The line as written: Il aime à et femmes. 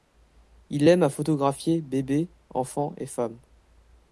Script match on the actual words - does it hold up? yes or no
no